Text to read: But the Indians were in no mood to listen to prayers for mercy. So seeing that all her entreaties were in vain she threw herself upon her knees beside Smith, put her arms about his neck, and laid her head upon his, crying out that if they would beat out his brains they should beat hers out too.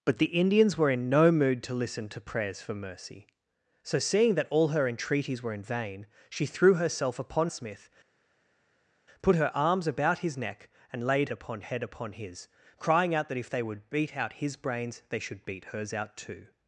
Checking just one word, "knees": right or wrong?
wrong